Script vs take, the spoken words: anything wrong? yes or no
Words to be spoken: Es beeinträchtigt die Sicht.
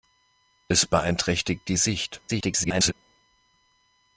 yes